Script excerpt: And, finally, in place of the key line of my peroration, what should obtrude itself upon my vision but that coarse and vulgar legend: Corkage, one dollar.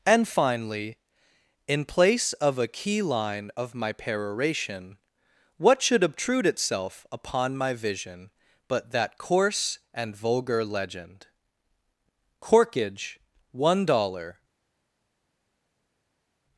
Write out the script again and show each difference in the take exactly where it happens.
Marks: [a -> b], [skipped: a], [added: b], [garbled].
And, finally, in place of [the -> a] key line of my peroration, what should obtrude itself upon my vision but that coarse and vulgar legend: Corkage, one dollar.